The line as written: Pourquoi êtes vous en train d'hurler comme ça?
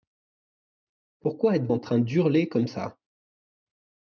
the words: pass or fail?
fail